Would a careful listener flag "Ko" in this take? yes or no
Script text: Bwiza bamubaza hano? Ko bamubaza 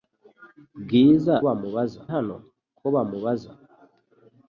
no